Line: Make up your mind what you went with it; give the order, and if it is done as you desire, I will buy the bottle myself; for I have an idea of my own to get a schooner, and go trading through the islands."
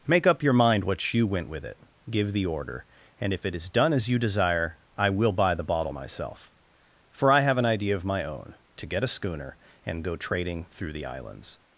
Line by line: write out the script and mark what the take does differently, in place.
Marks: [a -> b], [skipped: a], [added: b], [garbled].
Make up your mind what you went with it; give the order, and if it is done as you desire, I will buy the bottle myself; for I have an idea of my own to get a schooner, and go trading through the islands."